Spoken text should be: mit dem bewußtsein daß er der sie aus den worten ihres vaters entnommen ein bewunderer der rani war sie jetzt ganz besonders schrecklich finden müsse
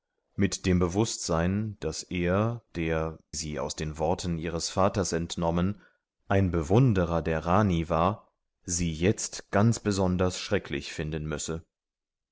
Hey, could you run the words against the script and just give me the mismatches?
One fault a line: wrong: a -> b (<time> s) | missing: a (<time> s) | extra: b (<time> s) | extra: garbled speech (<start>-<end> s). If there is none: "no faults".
no faults